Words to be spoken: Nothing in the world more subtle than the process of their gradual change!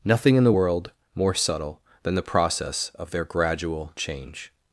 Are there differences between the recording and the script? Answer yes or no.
no